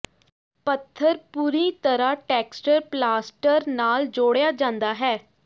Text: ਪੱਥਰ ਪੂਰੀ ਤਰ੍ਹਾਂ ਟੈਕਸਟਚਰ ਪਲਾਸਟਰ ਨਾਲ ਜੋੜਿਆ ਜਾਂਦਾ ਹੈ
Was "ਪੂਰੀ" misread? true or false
false